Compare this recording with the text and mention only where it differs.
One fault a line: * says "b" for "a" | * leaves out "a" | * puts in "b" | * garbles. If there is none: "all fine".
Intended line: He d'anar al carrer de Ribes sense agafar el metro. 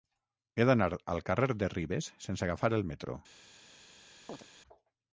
all fine